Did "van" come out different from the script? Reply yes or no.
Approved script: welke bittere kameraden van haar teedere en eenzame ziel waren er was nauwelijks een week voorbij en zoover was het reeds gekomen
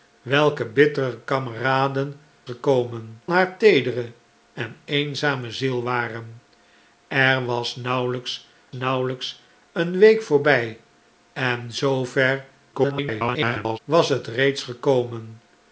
yes